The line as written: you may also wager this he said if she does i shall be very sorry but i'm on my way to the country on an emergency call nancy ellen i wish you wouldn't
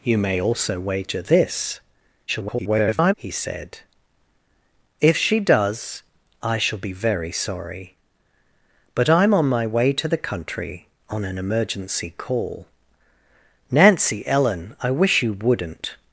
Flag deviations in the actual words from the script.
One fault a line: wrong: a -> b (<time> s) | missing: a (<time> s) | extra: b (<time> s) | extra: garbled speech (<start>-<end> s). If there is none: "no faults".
extra: garbled speech (2.3-3.1 s)